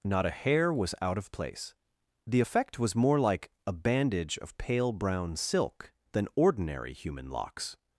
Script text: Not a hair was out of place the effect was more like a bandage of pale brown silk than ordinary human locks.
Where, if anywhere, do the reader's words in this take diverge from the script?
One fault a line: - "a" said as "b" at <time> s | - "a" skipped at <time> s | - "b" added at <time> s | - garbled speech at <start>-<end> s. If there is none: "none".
none